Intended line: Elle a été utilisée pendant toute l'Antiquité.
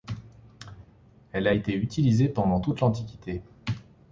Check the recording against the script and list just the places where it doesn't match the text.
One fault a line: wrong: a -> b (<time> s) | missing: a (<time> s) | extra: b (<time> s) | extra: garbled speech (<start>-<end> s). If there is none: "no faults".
no faults